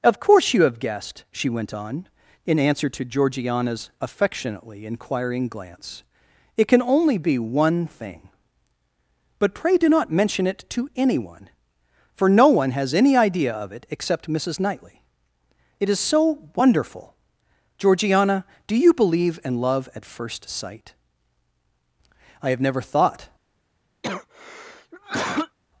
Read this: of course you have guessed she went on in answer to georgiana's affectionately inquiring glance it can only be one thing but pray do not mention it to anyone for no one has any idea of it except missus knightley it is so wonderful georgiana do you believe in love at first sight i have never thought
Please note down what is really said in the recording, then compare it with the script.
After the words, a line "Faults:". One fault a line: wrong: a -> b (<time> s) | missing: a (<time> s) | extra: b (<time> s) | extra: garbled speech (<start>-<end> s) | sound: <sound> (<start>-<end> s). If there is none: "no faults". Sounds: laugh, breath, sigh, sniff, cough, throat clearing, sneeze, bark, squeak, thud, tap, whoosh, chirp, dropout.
of course you have guessed she went on in answer to georgiana's affectionately inquiring glance it can only be one thing but pray do not mention it to anyone for no one has any idea of it except missus knightley it is so wonderful georgiana do you believe in love at first sight i have never thought
Faults:
sound: cough (24.0-25.6 s)